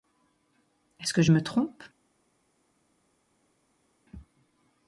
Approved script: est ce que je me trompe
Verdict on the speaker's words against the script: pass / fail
pass